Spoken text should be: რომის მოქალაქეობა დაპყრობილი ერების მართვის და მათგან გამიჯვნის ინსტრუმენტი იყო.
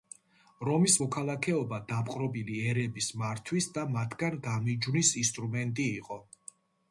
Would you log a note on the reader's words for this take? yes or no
no